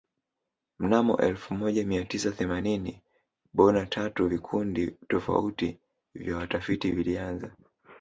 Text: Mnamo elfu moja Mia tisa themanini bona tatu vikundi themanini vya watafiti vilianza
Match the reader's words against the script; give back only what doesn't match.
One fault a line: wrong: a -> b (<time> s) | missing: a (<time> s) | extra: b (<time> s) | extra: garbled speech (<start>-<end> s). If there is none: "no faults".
wrong: themanini -> tofauti (5.1 s)